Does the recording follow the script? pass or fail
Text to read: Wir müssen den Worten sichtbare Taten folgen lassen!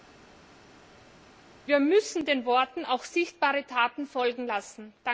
fail